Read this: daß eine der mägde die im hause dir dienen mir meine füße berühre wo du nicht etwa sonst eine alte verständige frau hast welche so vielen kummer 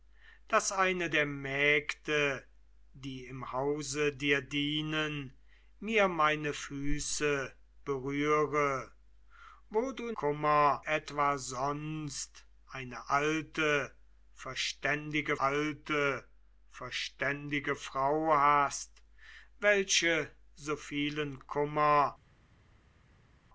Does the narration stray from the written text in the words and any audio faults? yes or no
yes